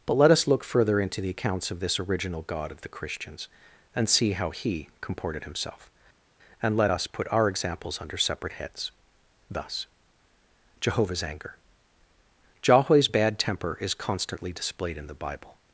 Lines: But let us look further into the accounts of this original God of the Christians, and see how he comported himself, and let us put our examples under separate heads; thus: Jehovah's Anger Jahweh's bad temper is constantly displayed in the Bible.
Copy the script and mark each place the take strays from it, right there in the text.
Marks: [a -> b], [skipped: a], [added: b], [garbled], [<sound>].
But let us look further into the accounts of this original God of the Christians, and see how he comported himself, and let us put our examples under separate heads; thus: Jehovah's Anger Jahweh's bad temper is constantly displayed in the Bible.